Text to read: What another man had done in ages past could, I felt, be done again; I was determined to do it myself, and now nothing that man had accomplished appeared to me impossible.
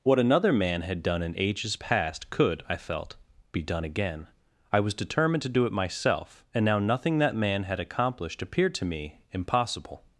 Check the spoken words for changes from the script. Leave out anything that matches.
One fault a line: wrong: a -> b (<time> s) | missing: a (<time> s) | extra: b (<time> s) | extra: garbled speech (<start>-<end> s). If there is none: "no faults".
no faults